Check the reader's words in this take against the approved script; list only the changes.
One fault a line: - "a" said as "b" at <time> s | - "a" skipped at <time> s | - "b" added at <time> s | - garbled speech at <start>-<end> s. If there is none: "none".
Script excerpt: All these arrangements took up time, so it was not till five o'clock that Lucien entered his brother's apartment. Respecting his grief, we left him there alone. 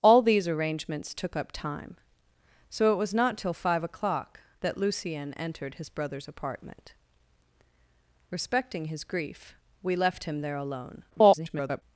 - garbled speech at 11.1-11.8 s